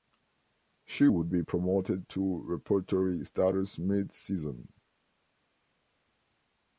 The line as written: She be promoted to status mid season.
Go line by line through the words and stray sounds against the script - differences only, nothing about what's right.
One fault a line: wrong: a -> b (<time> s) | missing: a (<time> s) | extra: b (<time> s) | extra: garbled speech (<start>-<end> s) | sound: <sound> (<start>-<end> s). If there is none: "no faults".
extra: would (1.0 s)
extra: repertory (2.5 s)